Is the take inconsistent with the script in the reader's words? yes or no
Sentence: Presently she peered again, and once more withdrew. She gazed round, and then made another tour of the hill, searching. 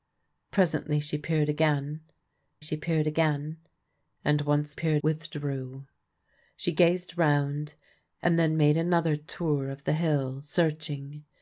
yes